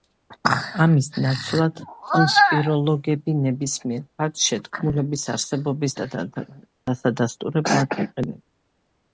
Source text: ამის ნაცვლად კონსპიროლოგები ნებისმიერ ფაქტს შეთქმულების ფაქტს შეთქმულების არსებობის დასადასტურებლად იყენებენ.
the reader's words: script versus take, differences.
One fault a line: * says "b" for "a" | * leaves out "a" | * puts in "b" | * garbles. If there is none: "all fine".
* leaves out "ფაქტს შეთქმულების"